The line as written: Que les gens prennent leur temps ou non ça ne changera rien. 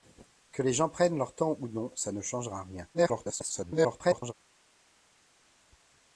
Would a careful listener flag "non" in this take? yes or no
no